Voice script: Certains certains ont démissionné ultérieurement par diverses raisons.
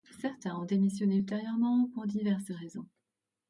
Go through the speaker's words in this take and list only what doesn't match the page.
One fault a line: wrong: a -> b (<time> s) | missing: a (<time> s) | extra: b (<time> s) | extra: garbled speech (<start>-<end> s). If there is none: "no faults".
missing: certains (0.6 s)
wrong: par -> pour (1.9 s)